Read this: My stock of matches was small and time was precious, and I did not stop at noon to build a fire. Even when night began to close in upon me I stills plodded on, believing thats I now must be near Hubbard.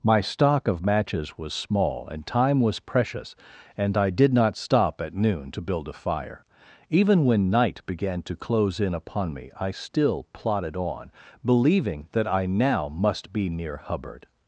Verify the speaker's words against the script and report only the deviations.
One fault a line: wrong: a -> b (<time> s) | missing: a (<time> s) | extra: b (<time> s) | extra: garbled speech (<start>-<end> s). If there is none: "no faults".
wrong: stills -> still (9.7 s)
wrong: thats -> that (12.1 s)